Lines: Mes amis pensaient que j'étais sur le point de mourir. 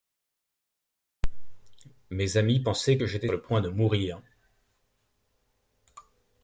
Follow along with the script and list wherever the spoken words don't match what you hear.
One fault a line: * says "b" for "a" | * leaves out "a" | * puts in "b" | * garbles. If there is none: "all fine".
* leaves out "sur"